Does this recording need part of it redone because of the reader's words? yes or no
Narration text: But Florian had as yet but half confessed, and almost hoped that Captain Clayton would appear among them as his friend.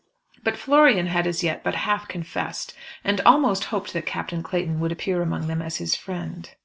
no